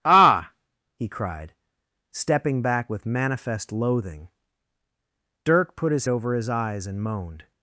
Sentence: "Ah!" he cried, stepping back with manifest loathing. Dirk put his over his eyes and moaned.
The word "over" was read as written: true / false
true